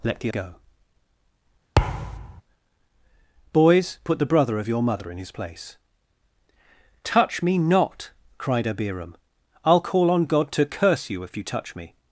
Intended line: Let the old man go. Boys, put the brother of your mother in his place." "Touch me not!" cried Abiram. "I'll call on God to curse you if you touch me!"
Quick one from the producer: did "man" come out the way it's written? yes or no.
no